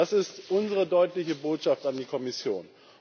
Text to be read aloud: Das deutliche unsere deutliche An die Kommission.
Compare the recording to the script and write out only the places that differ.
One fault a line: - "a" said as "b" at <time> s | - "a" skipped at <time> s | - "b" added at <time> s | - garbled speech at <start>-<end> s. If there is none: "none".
- "deutliche" said as "ist" at 0.1 s
- "Botschaft" added at 1.4 s